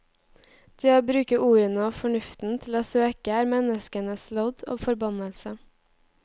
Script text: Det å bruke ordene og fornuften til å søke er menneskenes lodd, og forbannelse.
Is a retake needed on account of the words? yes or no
no